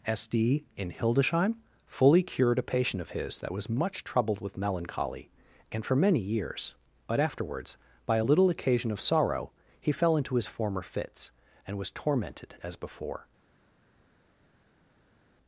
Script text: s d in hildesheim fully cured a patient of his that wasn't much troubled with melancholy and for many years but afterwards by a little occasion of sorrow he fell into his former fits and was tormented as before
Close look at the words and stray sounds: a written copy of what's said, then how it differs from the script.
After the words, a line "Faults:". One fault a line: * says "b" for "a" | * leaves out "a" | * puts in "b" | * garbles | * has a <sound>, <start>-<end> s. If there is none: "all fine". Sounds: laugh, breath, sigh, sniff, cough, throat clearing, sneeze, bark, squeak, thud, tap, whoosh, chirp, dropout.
s d in hildesheim fully cured a patient of his that was much troubled with melancholy and for many years but afterwards by a little occasion of sorrow he fell into his former fits and was tormented as before
Faults:
* says "was" for "wasn't"